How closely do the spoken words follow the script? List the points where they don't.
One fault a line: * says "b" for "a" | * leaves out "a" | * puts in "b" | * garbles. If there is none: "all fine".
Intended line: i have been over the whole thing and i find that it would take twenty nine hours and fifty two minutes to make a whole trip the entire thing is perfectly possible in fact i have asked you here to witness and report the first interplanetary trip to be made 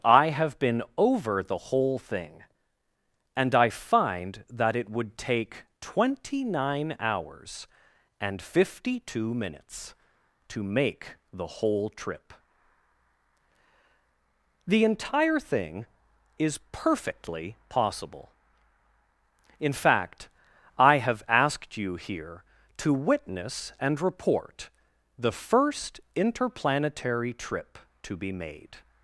* says "the" for "a"